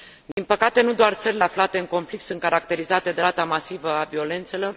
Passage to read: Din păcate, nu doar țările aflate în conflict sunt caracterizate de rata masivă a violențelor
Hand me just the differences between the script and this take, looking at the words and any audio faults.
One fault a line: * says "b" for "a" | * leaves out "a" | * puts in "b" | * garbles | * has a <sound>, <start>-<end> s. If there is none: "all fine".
* has a dropout, 0.3-0.4 s